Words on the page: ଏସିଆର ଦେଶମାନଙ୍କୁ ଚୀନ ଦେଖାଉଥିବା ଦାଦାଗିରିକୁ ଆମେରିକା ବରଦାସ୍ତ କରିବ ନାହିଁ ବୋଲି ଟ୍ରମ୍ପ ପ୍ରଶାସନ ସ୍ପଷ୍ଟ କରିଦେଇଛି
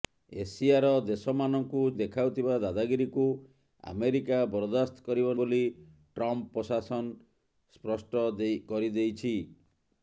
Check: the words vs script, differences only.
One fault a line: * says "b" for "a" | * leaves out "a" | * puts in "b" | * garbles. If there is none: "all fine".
* leaves out "ଚୀନ"
* leaves out "ନାହିଁ"